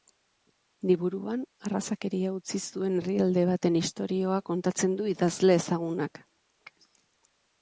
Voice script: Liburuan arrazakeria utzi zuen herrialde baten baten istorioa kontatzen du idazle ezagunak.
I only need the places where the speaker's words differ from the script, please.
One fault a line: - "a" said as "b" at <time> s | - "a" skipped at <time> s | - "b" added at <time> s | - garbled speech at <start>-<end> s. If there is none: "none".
- "baten" skipped at 3.8 s